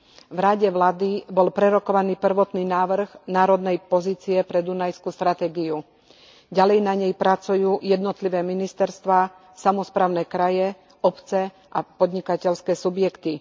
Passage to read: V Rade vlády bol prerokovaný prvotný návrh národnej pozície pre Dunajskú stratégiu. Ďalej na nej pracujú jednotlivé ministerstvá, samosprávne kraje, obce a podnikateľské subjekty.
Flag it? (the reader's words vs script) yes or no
no